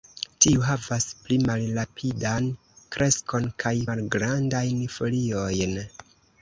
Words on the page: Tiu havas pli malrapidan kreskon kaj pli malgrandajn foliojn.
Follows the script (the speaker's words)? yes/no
no